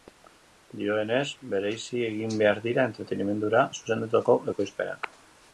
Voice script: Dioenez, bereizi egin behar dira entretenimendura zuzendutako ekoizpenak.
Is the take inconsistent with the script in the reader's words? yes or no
no